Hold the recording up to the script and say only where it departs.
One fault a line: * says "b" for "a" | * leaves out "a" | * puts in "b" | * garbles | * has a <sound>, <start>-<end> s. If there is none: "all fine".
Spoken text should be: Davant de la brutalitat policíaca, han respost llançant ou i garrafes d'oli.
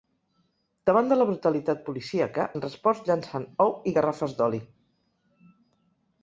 all fine